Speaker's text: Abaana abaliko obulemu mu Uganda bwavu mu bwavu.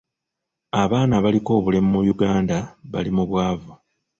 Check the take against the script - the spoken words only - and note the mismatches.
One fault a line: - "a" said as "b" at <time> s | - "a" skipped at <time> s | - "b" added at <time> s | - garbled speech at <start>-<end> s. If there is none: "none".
- "bwavu" said as "bali" at 2.9 s